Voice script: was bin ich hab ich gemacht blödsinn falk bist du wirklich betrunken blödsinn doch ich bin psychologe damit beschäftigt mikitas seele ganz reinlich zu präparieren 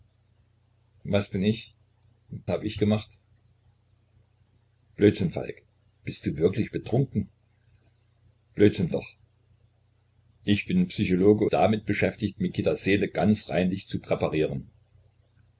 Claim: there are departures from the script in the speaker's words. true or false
false